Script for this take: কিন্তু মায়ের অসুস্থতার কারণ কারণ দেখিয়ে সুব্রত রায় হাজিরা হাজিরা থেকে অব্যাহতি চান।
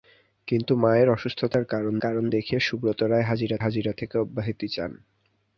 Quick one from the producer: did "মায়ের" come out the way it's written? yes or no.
yes